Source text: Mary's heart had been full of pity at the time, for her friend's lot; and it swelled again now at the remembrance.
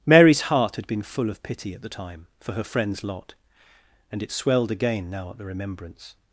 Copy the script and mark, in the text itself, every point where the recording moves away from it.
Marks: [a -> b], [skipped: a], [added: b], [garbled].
Mary's heart had been full of pity at the time, for her friend's lot; and it swelled again now at the remembrance.